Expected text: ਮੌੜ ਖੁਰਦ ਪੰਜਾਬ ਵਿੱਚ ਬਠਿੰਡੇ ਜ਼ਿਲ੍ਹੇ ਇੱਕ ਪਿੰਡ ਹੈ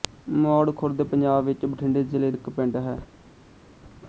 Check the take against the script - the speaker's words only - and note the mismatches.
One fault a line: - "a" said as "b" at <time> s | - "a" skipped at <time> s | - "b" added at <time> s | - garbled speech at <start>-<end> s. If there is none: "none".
none